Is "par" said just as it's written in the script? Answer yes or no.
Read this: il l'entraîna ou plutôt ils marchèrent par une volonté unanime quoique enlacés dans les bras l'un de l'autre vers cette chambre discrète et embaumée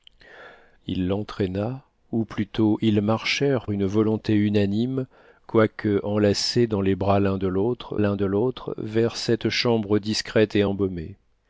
no